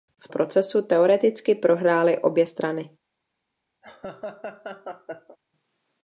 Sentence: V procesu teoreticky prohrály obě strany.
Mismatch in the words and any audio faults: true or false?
true